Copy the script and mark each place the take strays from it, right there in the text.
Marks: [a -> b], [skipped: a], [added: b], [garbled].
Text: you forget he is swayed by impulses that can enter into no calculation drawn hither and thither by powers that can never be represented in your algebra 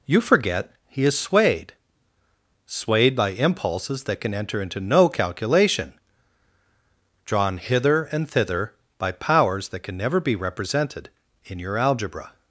you forget he is swayed [added: swayed] by impulses that can enter into no calculation drawn hither and thither by powers that can never be represented in your algebra